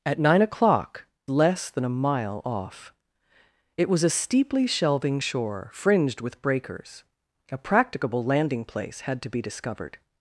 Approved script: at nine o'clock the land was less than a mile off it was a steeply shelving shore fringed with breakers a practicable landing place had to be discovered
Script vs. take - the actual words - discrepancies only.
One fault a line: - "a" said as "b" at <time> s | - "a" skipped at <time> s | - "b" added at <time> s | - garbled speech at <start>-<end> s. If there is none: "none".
- "the land was" skipped at 1.1 s